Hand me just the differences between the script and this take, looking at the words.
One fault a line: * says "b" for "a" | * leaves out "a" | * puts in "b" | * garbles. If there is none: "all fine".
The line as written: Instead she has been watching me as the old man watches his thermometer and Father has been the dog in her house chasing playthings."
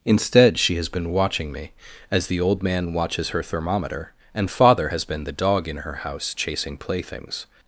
* says "her" for "his"